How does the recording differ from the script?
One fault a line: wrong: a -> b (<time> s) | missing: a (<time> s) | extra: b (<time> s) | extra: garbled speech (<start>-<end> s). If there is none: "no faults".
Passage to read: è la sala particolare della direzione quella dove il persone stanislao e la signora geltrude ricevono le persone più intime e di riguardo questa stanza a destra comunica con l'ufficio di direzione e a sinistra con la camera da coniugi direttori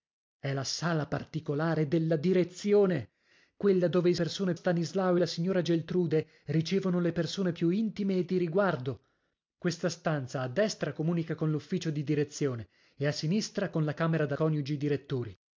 no faults